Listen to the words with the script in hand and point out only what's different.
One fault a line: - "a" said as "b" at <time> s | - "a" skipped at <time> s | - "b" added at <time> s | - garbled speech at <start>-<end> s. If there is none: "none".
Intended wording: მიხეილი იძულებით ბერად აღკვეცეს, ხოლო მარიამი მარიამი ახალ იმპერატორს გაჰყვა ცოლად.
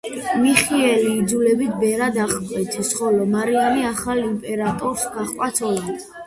- "მარიამი" skipped at 3.9 s